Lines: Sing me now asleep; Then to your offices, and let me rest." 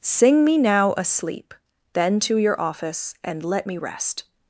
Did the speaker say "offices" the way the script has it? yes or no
no